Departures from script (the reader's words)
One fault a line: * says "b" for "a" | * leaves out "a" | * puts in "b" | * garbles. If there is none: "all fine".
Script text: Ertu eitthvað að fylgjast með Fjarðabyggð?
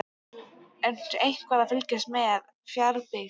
all fine